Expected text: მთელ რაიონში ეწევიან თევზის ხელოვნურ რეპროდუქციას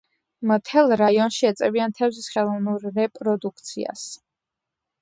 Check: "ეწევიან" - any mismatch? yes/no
no